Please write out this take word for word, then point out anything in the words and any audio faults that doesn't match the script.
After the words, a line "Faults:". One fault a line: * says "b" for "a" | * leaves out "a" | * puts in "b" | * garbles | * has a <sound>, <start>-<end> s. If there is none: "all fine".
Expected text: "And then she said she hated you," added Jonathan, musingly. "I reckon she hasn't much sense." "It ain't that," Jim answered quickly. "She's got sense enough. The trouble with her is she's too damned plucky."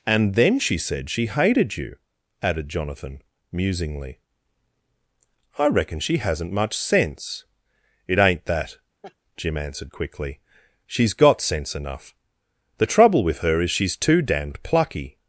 "And then she said she hated you," added Jonathan, musingly. "I reckon she hasn't much sense." "It ain't that," Jim answered quickly. "She's got sense enough. The trouble with her is she's too damned plucky."
Faults:
* has a laugh, 9.0-9.2 s